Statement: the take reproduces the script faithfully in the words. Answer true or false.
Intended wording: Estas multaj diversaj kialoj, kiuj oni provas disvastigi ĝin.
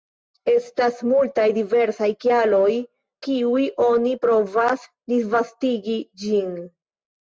true